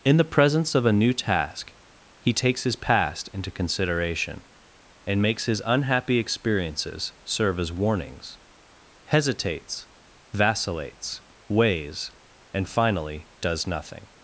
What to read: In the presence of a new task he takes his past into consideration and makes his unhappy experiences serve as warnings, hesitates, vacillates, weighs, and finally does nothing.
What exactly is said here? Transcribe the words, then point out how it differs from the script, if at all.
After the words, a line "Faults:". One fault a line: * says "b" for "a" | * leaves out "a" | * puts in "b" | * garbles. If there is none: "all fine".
In the presence of a new task he takes his past into consideration and makes his unhappy experiences serve as warnings, hesitates, vacillates, weighs, and finally does nothing.
Faults:
all fine